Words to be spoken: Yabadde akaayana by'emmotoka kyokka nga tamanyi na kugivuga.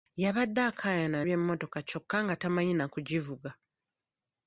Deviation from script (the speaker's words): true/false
false